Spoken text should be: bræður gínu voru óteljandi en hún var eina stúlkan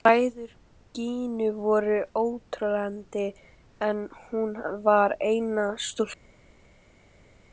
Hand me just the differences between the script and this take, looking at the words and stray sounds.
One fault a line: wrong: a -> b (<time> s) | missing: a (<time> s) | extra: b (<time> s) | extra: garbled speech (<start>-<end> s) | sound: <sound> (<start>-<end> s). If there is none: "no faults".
no faults